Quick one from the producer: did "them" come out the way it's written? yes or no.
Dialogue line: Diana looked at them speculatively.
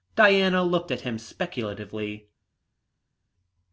no